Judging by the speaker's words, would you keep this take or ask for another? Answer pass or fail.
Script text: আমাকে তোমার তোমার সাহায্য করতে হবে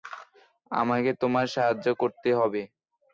fail